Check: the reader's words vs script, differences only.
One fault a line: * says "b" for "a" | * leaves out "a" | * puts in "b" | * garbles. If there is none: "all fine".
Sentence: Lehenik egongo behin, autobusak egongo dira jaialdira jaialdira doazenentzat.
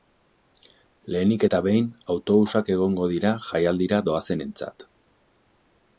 * says "eta" for "egongo"
* leaves out "jaialdira"